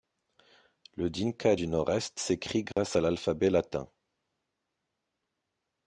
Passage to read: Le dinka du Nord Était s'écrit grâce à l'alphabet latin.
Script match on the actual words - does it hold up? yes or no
no